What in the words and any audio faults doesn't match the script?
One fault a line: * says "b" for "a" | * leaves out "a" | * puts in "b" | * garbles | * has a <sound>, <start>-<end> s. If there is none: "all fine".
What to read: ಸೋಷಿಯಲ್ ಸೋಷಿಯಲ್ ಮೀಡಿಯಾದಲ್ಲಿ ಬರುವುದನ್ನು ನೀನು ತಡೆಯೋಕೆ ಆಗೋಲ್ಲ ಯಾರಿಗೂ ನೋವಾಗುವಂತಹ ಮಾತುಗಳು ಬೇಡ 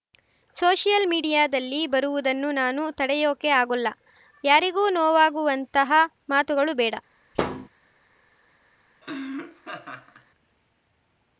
* leaves out "ಸೋಷಿಯಲ್"
* says "ನಾನು" for "ನೀನು"
* has a thud, 7.3-7.7 s
* has a laugh, 9.0-10.3 s